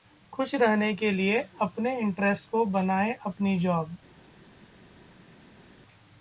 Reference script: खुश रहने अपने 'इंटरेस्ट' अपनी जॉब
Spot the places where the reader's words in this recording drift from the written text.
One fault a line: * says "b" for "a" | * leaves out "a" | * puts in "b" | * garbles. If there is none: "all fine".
* puts in "के लिए"
* puts in "को बनाएं"